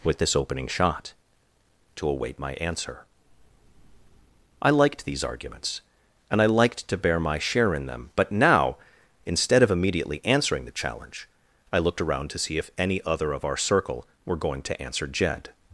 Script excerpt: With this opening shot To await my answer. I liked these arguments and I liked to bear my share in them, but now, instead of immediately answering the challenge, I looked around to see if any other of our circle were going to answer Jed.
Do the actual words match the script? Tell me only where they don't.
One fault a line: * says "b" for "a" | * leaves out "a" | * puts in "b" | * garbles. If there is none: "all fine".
all fine